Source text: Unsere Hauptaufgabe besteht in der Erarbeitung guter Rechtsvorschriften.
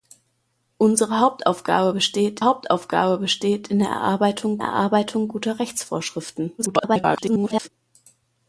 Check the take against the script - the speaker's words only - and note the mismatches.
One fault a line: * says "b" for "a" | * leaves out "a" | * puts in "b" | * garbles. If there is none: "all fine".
* puts in "Hauptaufgabe besteht"
* puts in "Erarbeitung"
* garbles